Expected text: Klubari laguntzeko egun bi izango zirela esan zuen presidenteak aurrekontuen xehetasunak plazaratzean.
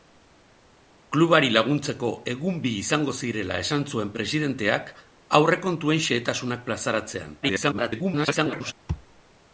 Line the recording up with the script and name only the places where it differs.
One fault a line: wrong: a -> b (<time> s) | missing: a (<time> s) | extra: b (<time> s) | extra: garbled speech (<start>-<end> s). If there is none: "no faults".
extra: garbled speech (7.4-8.7 s)